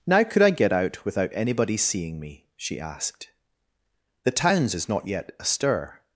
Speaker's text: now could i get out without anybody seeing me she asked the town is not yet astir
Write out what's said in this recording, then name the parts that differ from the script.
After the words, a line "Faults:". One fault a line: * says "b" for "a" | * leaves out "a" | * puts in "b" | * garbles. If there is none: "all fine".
now could i get out without anybody seeing me she asked the towns is not yet astir
Faults:
* says "towns" for "town"